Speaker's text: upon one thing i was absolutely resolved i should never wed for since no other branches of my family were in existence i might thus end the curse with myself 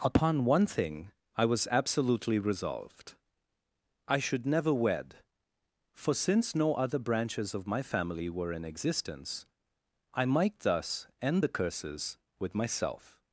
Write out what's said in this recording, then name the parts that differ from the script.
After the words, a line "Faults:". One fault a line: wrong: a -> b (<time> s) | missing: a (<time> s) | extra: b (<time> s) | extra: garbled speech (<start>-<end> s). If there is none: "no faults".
upon one thing i was absolutely resolved i should never wed for since no other branches of my family were in existence i might thus end the curses with myself
Faults:
wrong: curse -> curses (11.5 s)